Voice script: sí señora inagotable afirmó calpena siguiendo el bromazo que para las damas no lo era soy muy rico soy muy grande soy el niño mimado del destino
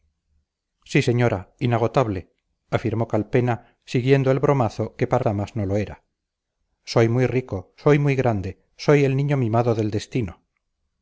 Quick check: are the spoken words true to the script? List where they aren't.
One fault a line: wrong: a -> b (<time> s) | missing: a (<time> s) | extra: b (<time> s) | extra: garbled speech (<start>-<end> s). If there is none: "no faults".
missing: las (5.2 s)